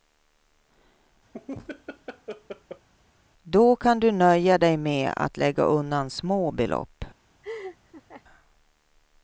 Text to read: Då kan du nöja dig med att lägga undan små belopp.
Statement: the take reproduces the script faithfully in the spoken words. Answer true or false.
true